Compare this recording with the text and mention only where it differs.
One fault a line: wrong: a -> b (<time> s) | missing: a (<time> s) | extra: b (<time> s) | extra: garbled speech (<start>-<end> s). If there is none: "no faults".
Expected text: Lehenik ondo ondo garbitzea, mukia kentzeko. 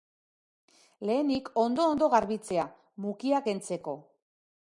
no faults